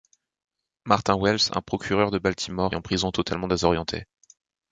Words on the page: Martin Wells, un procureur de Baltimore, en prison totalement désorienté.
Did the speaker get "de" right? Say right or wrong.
right